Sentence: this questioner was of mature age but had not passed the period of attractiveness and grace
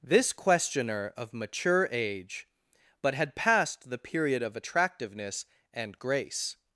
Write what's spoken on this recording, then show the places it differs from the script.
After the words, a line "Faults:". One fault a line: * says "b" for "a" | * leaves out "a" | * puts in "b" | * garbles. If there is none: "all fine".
this questioner of mature age but had passed the period of attractiveness and grace
Faults:
* leaves out "was"
* leaves out "not"